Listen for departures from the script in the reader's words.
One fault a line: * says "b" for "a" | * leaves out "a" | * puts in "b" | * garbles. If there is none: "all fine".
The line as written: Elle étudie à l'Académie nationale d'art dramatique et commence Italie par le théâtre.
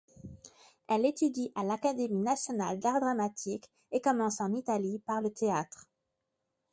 * puts in "en"